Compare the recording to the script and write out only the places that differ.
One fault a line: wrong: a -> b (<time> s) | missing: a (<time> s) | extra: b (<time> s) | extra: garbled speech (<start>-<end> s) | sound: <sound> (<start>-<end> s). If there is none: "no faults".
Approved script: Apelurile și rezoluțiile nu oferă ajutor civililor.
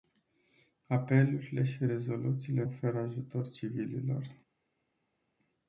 missing: nu (2.6 s)